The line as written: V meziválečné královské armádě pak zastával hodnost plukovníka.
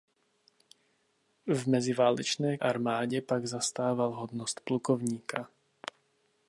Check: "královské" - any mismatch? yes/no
yes